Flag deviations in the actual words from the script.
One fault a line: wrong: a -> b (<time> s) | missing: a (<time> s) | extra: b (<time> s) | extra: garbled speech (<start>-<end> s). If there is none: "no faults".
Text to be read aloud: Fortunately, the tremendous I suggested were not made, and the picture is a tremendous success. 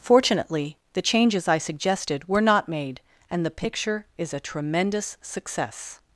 wrong: tremendous -> changes (1.0 s)